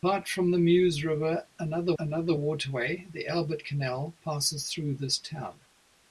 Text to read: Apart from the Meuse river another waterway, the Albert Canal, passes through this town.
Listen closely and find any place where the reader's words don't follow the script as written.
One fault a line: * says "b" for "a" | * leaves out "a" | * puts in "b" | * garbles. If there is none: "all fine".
* puts in "another"